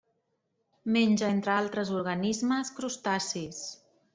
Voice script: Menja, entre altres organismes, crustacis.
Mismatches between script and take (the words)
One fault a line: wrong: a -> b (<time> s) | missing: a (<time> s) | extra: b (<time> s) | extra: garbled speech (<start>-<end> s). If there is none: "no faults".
no faults